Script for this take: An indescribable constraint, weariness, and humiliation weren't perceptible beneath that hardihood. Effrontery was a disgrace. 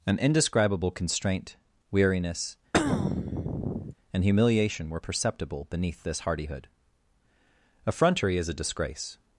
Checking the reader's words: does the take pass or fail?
fail